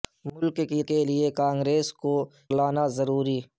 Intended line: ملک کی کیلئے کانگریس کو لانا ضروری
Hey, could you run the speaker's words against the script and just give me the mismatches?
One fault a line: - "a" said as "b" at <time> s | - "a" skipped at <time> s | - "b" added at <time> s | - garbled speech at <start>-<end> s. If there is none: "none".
none